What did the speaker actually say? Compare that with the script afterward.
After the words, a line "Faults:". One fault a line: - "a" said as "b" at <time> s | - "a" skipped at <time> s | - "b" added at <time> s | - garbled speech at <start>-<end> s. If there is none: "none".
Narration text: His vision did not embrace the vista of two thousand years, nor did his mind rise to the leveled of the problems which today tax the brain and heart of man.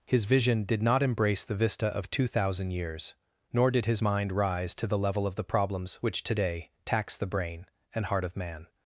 His vision did not embrace the vista of two thousand years, nor did his mind rise to the level of the problems which today tax the brain and heart of man.
Faults:
- "leveled" said as "level" at 5.0 s